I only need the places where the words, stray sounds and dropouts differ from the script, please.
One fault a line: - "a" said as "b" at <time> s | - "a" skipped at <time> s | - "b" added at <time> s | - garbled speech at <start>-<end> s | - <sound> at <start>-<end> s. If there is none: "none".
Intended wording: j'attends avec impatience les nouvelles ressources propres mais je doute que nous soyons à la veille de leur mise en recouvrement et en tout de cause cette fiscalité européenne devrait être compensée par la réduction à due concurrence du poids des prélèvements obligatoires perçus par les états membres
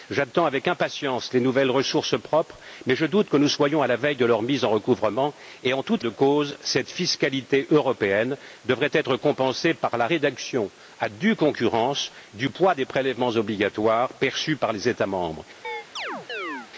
- chirp at 15.6-16.7 s